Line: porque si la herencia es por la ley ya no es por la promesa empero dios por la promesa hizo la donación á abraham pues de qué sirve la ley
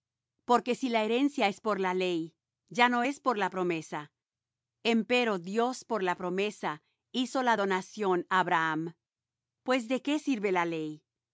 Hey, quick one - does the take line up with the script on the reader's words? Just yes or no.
yes